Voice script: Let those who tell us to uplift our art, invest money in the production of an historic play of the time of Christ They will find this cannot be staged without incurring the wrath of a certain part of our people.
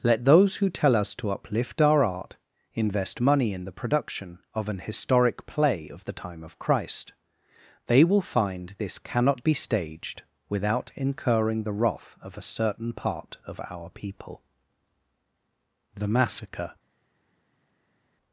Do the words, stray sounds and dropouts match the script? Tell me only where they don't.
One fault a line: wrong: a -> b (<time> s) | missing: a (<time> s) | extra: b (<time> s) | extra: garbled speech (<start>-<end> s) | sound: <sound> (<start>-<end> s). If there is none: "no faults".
extra: The Massacre (15.9 s)